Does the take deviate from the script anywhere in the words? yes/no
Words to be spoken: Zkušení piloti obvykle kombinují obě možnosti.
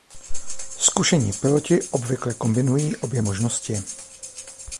no